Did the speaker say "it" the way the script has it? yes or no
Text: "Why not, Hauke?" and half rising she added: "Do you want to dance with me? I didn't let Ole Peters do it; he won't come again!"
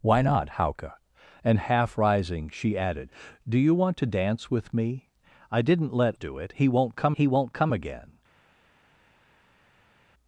no